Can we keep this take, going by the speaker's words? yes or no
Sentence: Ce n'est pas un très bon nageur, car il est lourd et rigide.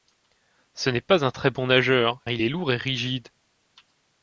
no